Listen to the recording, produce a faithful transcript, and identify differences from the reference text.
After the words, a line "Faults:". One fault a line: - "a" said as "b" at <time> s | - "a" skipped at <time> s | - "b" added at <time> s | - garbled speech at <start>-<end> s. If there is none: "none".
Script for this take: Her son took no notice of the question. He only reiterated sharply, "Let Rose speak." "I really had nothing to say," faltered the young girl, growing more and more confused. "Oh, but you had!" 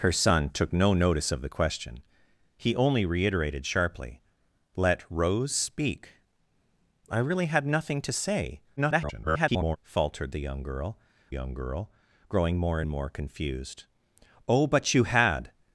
Her son took no notice of the question. He only reiterated sharply, "Let Rose speak." "I really had nothing to say," [garbled] faltered the young girl young girl, growing more and more confused. "Oh, but you had!"
Faults:
- garbled speech at 8.8-9.8 s
- "young girl" added at 11.3 s